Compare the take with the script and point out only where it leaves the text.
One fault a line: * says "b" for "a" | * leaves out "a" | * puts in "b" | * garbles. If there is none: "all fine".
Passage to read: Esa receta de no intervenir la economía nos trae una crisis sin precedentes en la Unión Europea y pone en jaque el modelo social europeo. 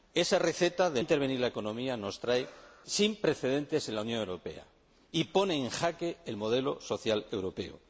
* leaves out "no"
* leaves out "una crisis"